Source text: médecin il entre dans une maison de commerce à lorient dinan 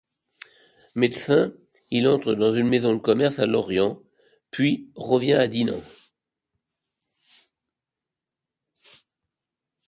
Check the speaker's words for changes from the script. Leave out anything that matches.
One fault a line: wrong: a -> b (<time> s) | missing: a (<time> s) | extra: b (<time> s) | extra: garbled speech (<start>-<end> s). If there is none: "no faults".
extra: puis revient à (4.5 s)